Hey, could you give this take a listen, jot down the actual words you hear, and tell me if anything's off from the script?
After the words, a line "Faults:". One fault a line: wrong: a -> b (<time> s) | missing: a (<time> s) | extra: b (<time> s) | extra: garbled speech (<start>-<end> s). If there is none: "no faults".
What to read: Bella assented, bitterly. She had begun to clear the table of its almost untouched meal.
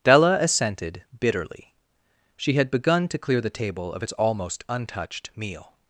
Della assented, bitterly. She had begun to clear the table of its almost untouched meal.
Faults:
wrong: Bella -> Della (0.0 s)